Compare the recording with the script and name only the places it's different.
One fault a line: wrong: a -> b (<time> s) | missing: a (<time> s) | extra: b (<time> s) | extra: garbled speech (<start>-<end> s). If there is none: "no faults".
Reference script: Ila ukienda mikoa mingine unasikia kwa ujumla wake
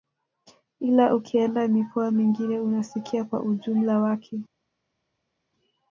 no faults